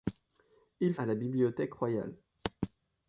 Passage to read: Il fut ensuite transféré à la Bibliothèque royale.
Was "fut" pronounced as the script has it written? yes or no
no